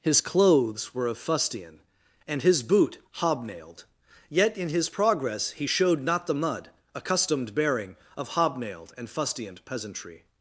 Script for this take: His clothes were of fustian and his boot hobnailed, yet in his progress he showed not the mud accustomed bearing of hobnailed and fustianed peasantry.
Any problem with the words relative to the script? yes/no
no